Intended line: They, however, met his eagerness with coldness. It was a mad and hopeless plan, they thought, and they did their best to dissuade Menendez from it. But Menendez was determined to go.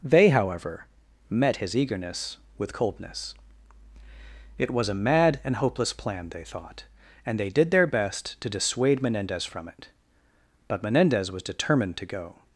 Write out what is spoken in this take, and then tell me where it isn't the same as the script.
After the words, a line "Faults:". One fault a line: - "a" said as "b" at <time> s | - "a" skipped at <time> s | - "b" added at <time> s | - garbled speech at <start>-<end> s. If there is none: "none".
They, however, met his eagerness with coldness. It was a mad and hopeless plan, they thought, and they did their best to dissuade Menendez from it. But Menendez was determined to go.
Faults:
none